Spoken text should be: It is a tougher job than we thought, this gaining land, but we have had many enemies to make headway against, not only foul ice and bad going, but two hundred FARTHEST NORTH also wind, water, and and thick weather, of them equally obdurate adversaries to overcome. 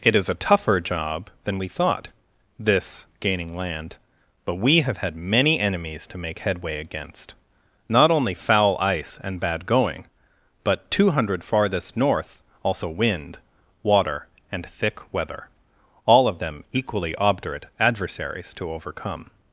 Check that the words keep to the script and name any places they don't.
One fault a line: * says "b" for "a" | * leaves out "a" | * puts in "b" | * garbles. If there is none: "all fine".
* leaves out "and"
* puts in "all"